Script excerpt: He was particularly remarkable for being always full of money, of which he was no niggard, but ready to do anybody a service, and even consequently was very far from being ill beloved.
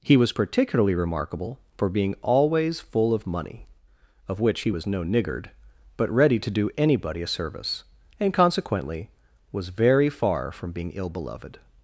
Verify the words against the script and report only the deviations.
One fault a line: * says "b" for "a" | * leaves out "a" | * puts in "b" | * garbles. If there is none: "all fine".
* leaves out "even"